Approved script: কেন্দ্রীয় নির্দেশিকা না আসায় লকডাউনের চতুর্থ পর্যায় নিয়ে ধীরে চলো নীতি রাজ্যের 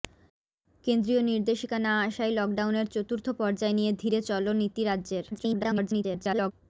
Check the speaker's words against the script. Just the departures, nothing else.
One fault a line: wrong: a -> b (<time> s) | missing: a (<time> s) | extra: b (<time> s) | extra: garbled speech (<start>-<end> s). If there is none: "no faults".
extra: garbled speech (5.3-6.5 s)